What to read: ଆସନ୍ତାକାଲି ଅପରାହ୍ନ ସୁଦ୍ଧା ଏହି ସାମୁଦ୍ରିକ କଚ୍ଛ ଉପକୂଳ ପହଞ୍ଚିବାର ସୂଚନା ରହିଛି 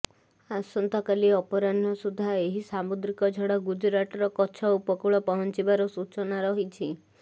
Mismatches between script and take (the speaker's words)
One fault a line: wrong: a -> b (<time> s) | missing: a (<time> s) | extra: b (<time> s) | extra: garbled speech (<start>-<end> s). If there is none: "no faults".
extra: ଝଡ଼ ଗୁଜରାଟର (3.4 s)